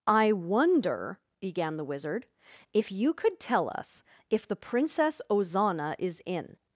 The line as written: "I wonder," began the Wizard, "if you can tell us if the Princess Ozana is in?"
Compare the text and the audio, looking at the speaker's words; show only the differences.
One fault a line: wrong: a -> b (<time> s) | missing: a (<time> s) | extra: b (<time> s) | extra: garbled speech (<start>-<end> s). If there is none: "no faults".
wrong: can -> could (3.1 s)